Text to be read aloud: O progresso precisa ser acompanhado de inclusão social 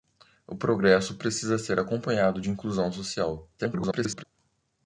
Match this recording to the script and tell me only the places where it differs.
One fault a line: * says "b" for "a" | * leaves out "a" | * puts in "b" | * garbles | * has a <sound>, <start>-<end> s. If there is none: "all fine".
* garbles